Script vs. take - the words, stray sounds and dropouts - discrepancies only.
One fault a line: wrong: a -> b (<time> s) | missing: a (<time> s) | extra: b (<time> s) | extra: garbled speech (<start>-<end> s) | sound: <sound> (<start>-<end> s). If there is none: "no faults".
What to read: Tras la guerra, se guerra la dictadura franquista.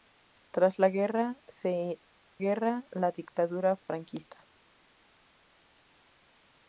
no faults